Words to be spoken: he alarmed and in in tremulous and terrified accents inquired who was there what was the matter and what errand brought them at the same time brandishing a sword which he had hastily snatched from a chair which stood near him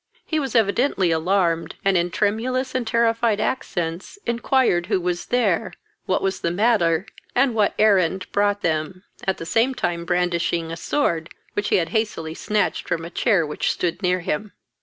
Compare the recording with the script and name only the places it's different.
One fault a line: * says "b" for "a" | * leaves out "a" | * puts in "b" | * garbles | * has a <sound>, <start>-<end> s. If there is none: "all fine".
* puts in "was evidently"
* leaves out "in"